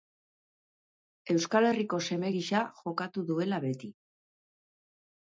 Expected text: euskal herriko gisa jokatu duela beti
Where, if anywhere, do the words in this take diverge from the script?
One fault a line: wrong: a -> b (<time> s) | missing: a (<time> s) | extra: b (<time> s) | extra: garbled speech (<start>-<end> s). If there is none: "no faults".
extra: seme (2.1 s)